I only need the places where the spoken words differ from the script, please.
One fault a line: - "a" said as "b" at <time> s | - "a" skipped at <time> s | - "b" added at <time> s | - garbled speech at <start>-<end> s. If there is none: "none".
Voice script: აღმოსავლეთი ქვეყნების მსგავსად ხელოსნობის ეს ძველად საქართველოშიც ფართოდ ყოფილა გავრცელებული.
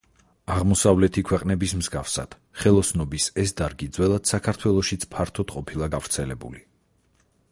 - "დარგი" added at 3.6 s